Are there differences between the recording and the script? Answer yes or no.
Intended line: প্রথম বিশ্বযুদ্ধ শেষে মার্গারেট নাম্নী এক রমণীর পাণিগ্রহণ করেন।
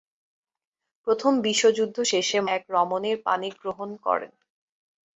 yes